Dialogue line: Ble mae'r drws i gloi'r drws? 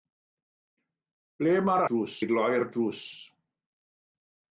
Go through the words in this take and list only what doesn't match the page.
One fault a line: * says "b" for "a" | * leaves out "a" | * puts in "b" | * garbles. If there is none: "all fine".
all fine